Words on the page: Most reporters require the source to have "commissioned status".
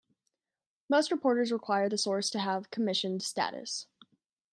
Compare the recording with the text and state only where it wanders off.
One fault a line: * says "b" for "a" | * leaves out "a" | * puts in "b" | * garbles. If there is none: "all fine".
all fine